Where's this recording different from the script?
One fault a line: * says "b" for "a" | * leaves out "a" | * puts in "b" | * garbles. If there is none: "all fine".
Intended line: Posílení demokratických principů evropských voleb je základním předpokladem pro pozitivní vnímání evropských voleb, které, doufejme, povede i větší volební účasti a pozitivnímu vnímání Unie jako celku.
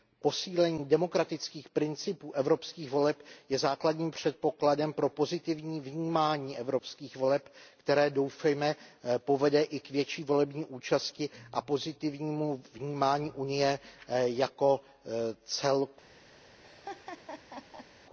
* puts in "k"